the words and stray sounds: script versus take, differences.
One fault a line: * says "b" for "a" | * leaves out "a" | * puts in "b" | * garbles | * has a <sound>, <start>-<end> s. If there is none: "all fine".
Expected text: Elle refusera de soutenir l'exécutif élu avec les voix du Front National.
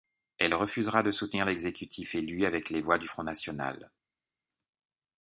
all fine